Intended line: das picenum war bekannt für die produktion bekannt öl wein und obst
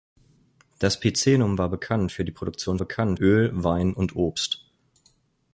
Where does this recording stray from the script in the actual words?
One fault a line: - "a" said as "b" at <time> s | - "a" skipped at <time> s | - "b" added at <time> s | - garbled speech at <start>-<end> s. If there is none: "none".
none